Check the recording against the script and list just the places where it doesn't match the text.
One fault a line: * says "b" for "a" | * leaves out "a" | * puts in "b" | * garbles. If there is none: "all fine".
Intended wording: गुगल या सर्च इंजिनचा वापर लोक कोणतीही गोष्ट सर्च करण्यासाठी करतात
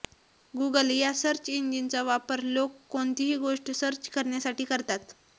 all fine